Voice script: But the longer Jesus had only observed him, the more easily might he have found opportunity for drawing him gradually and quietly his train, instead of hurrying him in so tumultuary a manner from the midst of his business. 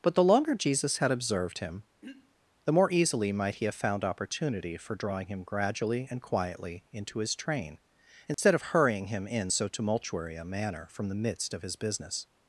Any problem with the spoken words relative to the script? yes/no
yes